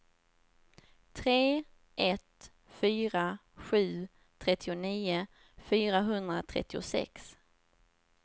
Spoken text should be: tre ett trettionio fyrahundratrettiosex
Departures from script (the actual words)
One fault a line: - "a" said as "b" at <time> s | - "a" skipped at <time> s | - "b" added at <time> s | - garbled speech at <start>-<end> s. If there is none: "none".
- "fyra sju" added at 2.7 s